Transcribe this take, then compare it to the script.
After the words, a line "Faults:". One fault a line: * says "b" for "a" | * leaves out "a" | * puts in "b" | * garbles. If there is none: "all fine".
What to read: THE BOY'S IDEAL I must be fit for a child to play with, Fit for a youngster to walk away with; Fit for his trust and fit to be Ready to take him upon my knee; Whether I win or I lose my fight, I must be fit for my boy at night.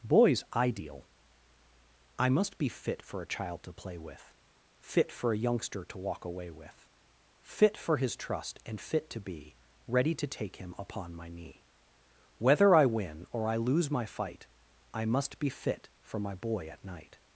BOY'S IDEAL I must be fit for a child to play with, Fit for a youngster to walk away with; Fit for his trust and fit to be Ready to take him upon my knee; Whether I win or I lose my fight, I must be fit for my boy at night.
Faults:
* leaves out "THE"